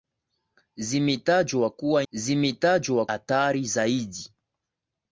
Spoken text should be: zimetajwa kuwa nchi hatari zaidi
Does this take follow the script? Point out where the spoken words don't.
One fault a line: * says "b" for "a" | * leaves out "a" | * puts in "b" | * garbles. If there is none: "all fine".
* says "zimetajwa" for "nchi"